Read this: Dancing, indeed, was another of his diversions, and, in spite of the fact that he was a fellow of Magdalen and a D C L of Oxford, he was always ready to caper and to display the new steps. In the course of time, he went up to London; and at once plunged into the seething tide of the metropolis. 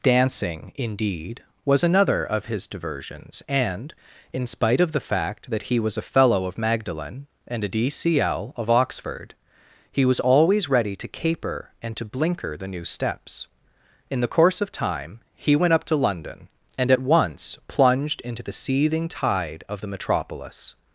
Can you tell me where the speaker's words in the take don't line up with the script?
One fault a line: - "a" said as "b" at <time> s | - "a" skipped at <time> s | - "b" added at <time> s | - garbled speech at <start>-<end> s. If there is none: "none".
- "display" said as "blinker" at 12.0 s